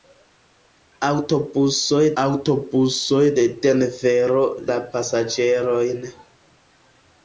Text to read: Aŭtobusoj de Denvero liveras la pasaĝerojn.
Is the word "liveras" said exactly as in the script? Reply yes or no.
no